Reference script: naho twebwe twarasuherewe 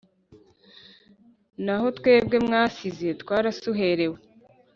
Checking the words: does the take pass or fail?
fail